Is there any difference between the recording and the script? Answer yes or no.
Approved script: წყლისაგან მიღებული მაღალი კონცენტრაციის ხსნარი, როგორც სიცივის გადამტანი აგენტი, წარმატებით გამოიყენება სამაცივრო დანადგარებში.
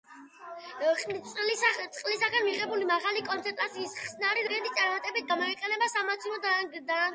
yes